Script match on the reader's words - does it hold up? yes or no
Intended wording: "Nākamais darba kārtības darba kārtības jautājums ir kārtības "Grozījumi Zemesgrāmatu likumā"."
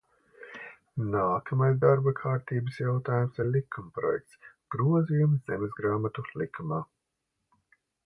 no